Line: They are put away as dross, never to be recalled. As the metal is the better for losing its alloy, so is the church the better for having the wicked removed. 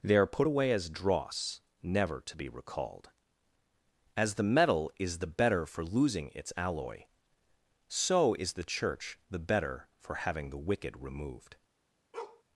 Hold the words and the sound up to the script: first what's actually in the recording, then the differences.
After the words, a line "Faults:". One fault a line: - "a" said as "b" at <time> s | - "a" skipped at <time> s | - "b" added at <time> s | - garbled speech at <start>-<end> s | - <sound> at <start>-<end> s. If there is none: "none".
They are put away as dross, never to be recalled. As the metal is the better for losing its alloy, so is the church the better for having the wicked removed.
Faults:
- bark at 12.1-12.4 s